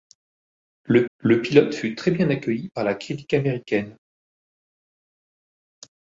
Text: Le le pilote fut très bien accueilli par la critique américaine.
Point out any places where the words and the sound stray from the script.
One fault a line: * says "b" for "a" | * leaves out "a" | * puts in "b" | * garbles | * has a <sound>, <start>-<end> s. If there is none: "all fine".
all fine